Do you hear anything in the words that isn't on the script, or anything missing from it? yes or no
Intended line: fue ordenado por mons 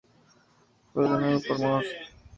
no